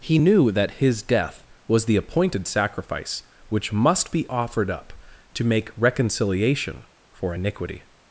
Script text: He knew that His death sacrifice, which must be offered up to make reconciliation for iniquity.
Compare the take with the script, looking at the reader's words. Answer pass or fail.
fail